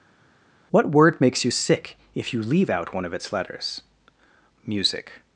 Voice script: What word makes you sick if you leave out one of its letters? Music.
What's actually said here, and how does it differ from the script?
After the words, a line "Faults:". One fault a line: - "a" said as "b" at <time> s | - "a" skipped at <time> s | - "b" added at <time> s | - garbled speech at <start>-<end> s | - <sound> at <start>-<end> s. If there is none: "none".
What word makes you sick if you leave out one of its letters? Music.
Faults:
none